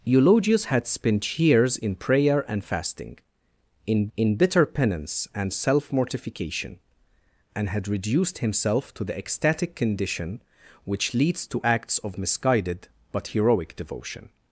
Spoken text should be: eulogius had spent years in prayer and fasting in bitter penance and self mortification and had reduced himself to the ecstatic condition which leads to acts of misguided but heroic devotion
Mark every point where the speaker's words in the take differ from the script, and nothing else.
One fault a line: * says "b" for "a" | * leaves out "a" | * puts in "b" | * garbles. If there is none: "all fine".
* puts in "in"